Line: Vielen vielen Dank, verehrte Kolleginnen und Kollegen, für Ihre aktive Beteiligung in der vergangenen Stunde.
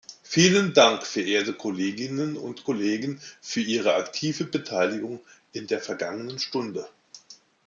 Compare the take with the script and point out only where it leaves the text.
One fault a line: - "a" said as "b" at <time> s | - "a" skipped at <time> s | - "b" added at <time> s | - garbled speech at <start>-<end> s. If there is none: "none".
- "vielen" skipped at 0.7 s